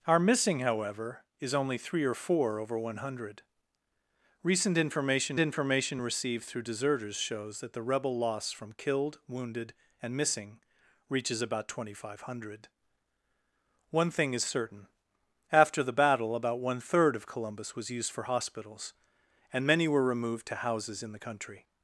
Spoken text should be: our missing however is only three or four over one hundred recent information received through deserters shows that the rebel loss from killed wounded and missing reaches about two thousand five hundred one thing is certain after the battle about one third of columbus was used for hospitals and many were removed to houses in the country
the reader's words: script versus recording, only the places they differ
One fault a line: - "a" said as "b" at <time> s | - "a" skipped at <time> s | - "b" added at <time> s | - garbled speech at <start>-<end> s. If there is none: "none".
- "information" added at 5.4 s